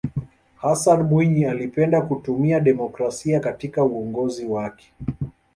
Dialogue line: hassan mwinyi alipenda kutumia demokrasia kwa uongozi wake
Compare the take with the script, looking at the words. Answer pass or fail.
fail